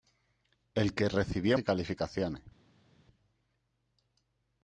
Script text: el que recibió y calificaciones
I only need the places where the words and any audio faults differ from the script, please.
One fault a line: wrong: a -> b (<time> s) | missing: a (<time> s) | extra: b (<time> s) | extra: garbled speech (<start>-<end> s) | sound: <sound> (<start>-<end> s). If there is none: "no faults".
no faults